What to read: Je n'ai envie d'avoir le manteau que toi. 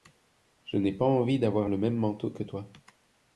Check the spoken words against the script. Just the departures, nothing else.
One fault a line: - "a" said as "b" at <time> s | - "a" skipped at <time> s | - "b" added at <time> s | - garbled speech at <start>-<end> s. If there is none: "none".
- "pas" added at 0.9 s
- "même" added at 1.8 s